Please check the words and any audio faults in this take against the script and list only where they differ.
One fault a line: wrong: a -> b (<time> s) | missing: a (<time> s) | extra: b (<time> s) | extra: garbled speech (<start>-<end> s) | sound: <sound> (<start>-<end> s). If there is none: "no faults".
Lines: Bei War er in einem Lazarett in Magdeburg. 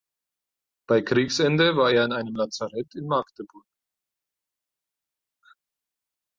extra: Kriegsende (1.0 s)